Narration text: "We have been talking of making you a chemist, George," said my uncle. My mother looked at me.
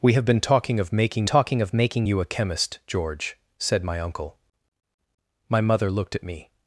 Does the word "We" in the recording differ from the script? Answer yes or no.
no